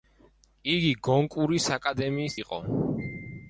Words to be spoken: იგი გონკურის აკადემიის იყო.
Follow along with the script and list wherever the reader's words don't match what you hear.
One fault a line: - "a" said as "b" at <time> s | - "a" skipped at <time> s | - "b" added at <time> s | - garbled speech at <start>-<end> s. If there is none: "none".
none